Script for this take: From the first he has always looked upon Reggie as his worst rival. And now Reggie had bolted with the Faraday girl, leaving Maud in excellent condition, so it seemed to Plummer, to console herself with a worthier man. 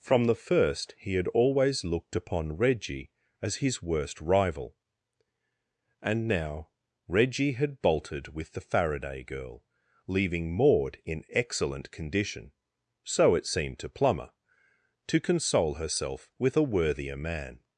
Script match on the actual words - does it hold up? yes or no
no